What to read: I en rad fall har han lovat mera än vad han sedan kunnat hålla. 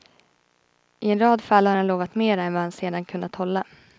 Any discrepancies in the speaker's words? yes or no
no